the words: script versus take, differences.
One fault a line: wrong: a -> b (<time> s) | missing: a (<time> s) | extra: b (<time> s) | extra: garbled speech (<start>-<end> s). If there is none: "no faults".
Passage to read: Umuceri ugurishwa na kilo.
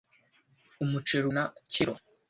missing: ugurishwa (1.2 s)